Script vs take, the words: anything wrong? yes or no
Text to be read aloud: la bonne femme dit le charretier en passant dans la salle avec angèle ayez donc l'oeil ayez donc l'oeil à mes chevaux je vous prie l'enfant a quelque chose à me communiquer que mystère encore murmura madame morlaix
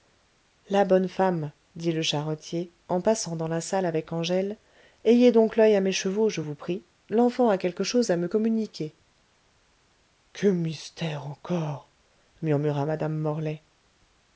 yes